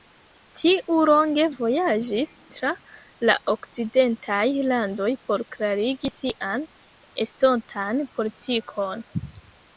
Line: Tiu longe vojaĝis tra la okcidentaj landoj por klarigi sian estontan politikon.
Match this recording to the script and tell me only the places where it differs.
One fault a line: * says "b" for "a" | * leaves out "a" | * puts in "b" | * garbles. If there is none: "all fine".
all fine